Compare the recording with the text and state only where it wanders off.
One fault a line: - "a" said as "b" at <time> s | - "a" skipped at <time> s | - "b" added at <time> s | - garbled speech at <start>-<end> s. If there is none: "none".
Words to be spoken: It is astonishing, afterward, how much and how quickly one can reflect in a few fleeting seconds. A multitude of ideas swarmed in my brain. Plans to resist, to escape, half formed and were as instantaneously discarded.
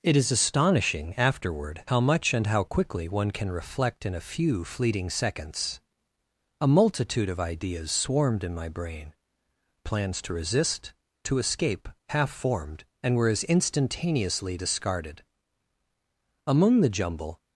- "Among the jumble" added at 16.5 s